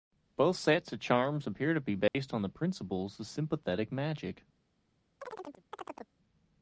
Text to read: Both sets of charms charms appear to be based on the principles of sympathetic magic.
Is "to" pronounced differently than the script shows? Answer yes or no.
no